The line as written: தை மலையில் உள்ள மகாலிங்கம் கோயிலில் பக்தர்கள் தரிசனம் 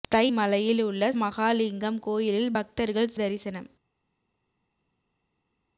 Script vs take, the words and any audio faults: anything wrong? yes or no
no